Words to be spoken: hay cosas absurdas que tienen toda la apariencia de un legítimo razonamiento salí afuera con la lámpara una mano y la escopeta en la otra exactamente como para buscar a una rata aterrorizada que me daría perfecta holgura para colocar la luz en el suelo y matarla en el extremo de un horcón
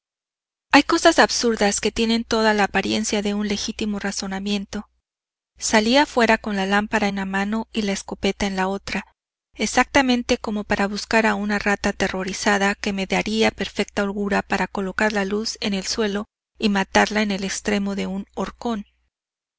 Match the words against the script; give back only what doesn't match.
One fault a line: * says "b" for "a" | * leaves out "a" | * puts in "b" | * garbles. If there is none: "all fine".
all fine